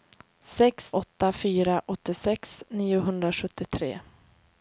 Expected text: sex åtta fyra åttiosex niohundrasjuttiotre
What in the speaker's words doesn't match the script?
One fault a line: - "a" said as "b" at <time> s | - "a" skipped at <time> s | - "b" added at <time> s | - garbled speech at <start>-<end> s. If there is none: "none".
none